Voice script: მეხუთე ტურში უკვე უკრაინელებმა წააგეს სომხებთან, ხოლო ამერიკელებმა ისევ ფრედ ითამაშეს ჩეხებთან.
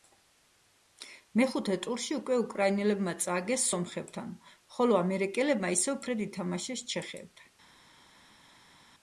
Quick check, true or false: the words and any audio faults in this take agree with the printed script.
true